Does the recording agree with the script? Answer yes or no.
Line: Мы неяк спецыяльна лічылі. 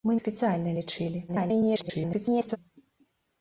no